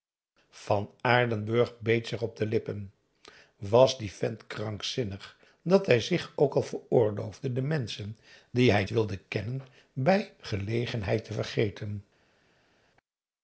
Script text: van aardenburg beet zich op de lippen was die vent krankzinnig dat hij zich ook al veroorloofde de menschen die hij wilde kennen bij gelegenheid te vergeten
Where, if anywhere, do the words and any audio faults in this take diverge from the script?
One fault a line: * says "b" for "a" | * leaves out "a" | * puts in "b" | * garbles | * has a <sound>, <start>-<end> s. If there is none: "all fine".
all fine